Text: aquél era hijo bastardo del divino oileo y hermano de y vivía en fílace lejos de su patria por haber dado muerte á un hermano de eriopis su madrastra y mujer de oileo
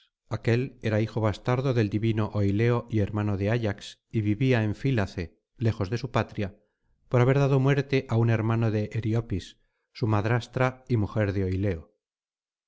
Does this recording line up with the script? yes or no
no